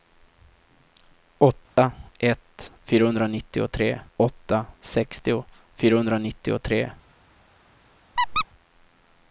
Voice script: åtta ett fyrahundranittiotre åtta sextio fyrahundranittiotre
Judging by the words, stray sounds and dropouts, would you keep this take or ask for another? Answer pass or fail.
fail